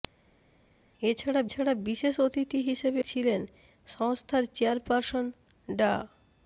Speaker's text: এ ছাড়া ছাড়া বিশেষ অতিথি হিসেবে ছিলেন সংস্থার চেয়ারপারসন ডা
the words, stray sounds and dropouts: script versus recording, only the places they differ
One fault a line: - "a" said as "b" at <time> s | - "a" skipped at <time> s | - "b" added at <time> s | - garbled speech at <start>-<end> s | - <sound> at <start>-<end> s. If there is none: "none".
none